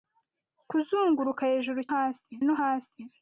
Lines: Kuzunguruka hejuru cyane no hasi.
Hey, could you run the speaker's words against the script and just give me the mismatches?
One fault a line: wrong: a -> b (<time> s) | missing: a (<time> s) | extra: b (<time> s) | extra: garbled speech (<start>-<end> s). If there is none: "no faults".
wrong: cyane -> hasi (1.9 s)